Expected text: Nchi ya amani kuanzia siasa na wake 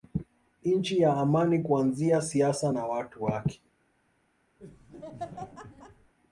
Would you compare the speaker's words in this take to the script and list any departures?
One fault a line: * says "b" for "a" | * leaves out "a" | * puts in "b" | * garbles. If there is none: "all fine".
* puts in "watu"